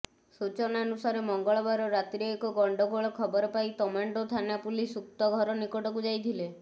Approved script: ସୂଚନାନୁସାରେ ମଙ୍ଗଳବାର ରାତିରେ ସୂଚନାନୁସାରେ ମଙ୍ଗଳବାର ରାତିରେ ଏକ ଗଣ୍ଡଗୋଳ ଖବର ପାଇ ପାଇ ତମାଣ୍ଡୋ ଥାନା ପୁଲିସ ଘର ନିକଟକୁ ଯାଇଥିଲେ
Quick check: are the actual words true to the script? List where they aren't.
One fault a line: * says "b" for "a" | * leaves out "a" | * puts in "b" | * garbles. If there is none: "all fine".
* leaves out "ସୂଚନାନୁସାରେ ମଙ୍ଗଳବାର ରାତିରେ"
* leaves out "ପାଇ"
* puts in "ଉକ୍ତ"